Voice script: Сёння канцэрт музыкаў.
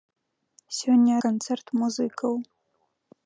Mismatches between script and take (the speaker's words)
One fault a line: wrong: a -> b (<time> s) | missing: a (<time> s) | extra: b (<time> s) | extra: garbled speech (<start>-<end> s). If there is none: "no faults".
no faults